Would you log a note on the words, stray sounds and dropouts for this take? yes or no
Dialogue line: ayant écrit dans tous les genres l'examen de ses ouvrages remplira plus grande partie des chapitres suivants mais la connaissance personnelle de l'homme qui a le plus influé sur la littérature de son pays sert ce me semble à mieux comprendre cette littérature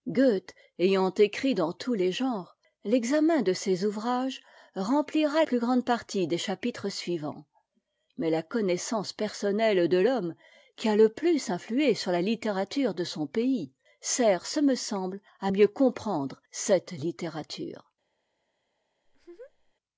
yes